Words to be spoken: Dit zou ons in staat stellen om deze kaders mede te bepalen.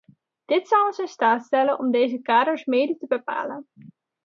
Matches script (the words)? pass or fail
pass